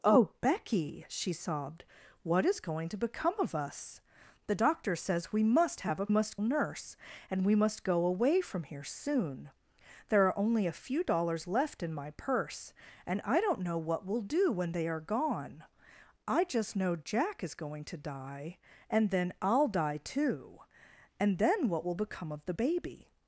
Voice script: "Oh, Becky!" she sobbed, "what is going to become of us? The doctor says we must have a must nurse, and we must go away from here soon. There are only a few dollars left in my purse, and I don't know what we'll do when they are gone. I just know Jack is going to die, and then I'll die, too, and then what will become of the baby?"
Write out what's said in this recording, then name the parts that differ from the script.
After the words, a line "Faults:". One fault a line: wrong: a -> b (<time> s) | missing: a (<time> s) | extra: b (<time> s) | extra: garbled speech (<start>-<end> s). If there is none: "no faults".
"Oh, Becky!" she sobbed, "what is going to become of us? The doctor says we must have a must nurse, and we must go away from here soon. There are only a few dollars left in my purse, and I don't know what we'll do when they are gone. I just know Jack is going to die, and then I'll die, too, and then what will become of the baby?"
Faults:
no faults